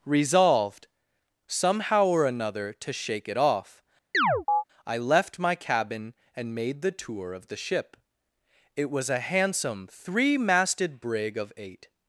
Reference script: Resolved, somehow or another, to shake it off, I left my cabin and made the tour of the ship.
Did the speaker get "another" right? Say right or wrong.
right